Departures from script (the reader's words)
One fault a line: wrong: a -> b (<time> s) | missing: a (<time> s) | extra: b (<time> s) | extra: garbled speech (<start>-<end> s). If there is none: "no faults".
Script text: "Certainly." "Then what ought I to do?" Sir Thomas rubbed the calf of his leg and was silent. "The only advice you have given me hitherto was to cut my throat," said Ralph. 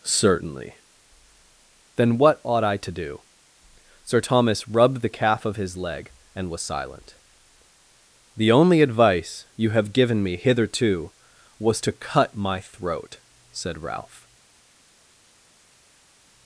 no faults